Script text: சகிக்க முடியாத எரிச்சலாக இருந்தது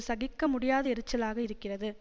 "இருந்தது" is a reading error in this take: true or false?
true